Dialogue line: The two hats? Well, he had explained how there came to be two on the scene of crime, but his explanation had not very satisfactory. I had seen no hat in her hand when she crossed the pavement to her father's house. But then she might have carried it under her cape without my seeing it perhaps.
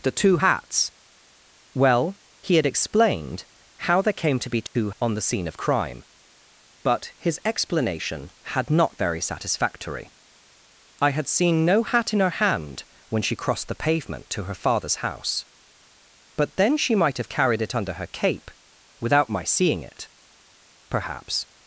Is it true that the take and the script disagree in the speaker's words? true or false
false